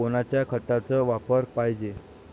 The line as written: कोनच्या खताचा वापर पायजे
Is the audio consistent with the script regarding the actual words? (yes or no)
yes